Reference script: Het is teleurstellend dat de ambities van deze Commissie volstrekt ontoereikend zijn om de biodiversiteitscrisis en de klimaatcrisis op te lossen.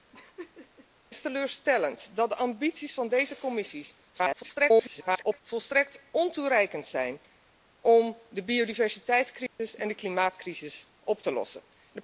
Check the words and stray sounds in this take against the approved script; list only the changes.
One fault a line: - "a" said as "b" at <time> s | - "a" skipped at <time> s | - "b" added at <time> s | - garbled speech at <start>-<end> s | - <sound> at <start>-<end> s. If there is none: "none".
- laugh at 0.1-0.9 s
- garbled speech at 4.1-5.4 s
- dropout at 9.5-9.6 s